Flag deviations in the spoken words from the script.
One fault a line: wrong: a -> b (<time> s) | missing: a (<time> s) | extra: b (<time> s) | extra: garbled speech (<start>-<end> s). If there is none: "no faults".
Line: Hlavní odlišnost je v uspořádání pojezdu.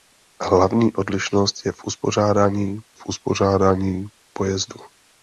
extra: v uspořádání (2.9 s)